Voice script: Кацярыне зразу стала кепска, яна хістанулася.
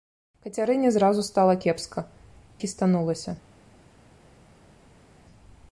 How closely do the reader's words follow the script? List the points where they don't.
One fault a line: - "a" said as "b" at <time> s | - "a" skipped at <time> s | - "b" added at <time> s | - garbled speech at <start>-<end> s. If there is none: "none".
- "яна" skipped at 2.0 s